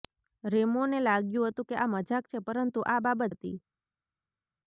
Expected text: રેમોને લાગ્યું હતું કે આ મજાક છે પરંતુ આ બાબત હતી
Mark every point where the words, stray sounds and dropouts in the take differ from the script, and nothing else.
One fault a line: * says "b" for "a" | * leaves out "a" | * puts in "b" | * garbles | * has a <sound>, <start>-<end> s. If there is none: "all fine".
all fine